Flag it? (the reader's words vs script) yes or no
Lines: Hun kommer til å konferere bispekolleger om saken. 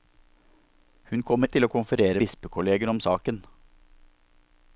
no